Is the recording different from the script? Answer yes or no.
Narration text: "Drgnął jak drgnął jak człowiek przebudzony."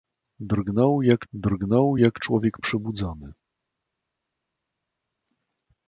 no